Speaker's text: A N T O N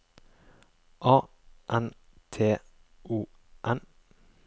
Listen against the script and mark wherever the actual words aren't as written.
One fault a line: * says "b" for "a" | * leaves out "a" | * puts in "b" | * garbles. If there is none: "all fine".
all fine